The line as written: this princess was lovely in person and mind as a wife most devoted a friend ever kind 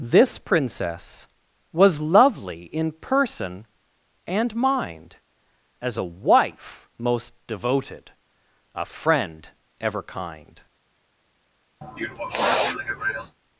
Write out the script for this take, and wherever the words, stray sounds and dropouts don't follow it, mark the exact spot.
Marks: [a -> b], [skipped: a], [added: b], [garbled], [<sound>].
this princess was lovely in person and mind as a wife most devoted a friend ever kind [sniff]